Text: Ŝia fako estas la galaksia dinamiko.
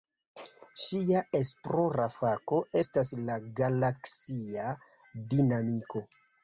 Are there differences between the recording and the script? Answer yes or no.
yes